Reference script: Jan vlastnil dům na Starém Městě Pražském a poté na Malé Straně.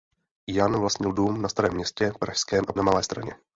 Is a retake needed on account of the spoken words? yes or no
yes